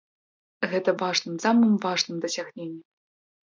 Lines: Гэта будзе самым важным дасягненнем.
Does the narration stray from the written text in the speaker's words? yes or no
yes